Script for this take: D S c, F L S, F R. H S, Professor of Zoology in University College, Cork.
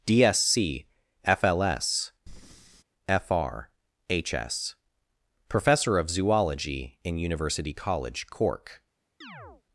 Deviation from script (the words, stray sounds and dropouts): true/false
true